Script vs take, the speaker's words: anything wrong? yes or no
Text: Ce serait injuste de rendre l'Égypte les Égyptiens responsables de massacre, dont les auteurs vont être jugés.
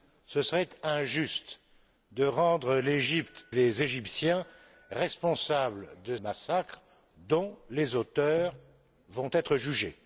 no